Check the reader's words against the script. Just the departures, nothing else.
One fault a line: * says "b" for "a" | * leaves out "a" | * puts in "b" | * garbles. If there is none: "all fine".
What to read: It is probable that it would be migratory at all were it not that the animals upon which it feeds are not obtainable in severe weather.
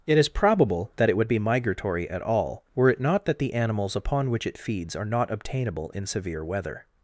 all fine